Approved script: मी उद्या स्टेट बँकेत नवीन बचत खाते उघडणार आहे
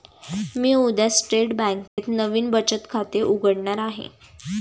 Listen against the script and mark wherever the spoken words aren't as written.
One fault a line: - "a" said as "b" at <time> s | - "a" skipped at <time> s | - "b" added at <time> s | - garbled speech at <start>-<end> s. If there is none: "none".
none